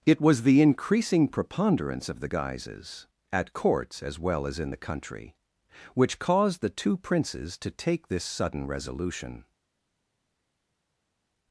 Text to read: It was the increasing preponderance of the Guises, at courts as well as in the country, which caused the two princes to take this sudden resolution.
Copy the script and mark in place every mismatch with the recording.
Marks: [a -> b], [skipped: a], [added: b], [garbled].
It was the increasing preponderance of the Guises, at courts as well as in the country, which caused the two princes to take this sudden resolution.